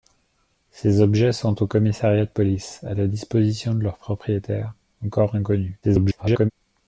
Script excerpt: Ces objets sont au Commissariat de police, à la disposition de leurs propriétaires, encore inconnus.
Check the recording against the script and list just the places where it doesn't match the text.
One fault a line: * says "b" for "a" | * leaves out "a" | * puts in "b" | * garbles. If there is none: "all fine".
* garbles